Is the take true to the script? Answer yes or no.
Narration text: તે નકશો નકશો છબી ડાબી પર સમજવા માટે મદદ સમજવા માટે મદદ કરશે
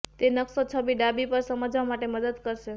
no